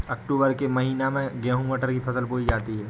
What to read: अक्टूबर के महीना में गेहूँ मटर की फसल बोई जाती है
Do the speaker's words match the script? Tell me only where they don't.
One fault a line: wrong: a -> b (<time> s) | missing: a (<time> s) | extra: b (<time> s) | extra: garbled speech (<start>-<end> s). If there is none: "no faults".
no faults